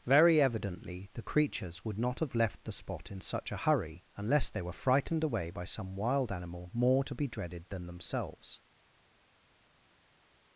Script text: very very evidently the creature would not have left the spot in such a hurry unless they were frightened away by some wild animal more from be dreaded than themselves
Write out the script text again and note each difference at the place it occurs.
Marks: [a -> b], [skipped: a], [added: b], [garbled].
very [skipped: very] evidently the [creature -> creatures] would not have left the spot in such a hurry unless they were frightened away by some wild animal more [from -> to] be dreaded than themselves